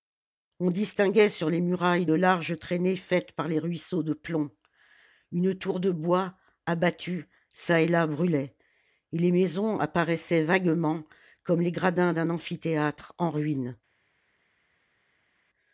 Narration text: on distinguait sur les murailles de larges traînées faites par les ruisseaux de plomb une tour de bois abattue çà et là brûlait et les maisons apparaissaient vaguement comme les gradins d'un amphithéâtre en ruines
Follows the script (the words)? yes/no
yes